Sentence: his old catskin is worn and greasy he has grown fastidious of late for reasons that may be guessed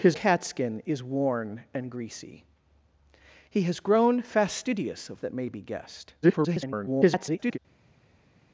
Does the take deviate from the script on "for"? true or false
true